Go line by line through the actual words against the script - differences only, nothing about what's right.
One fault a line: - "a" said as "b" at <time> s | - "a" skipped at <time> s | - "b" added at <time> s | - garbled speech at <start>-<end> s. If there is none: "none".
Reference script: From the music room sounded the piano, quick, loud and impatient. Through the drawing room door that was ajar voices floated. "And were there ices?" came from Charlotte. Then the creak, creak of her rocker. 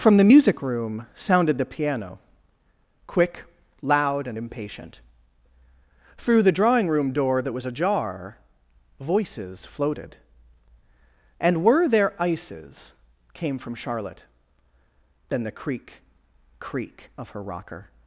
none